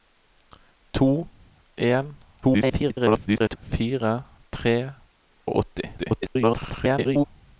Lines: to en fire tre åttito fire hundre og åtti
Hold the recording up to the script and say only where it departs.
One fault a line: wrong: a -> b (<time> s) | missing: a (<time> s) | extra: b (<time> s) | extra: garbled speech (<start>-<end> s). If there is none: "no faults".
extra: garbled speech (2.4-3.6 s)
missing: åttito fire hundre (4.8 s)
extra: garbled speech (6.0-7.2 s)